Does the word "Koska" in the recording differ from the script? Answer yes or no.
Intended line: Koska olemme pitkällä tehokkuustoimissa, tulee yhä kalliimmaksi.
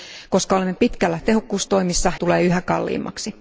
no